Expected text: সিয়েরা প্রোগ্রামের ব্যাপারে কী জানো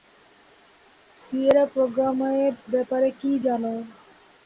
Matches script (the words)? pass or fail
pass